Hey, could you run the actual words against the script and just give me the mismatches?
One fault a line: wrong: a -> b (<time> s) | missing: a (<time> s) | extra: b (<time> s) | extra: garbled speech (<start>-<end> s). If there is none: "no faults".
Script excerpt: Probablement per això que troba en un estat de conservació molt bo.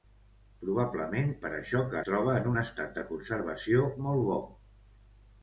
no faults